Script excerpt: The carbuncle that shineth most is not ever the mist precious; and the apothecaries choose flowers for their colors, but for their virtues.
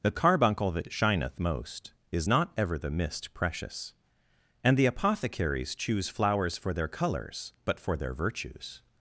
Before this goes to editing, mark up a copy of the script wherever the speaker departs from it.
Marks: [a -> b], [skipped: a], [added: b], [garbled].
The carbuncle that shineth most is not ever the mist precious; and the apothecaries choose flowers for their colors, but for their virtues.